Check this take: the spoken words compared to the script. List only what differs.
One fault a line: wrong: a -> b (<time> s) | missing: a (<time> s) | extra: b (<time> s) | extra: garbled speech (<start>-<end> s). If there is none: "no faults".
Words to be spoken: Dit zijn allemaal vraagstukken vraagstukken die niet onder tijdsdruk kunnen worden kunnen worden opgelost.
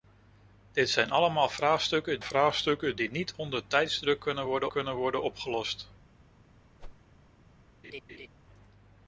no faults